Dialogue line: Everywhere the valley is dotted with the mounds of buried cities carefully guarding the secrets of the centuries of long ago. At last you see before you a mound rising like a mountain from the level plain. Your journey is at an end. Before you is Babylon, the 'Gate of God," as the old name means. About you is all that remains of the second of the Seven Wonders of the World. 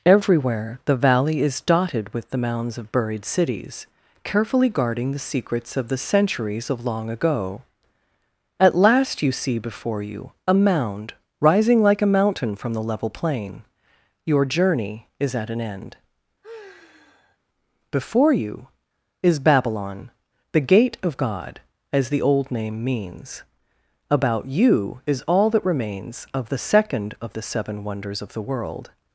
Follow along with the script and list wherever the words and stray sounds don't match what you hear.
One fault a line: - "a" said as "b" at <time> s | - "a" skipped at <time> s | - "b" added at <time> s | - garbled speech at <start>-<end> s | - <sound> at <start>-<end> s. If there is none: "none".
- sigh at 16.4-17.4 s